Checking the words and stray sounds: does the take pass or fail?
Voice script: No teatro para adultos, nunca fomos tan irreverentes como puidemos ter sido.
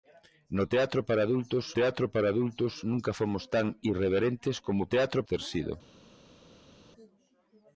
fail